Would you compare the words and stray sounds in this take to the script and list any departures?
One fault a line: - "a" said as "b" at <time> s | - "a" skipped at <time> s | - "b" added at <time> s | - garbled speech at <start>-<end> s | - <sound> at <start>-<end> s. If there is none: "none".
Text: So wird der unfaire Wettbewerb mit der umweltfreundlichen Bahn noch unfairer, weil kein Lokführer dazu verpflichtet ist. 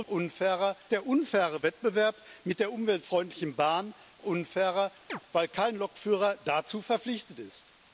- "wird" said as "unfairer" at 0.0 s
- "noch" skipped at 3.9 s
- chirp at 5.1-5.2 s